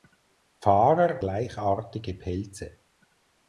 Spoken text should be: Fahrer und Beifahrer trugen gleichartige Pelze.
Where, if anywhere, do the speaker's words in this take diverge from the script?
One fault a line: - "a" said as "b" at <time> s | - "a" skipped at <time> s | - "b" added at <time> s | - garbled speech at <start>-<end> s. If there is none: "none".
- "und Beifahrer trugen" skipped at 1.2 s